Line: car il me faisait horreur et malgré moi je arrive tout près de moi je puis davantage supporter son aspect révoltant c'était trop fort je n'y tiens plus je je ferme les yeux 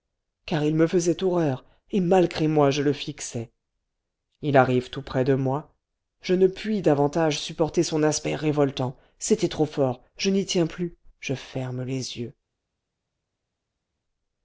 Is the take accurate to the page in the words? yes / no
no